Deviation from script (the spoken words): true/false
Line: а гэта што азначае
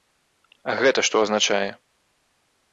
false